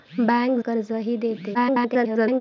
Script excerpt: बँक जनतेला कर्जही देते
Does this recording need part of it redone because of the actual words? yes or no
yes